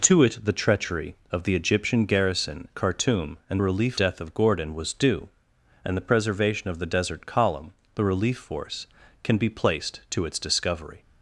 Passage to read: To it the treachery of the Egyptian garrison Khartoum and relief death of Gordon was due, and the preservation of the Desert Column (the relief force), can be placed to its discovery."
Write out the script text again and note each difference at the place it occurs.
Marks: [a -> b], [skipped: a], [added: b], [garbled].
To it the treachery of the Egyptian garrison Khartoum and relief death of Gordon was due, and the preservation of the Desert Column (the relief force), can be placed to its discovery."